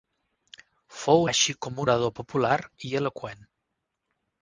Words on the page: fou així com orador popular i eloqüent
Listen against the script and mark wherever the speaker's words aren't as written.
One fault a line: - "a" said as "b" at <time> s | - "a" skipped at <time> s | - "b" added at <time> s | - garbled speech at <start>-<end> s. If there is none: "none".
none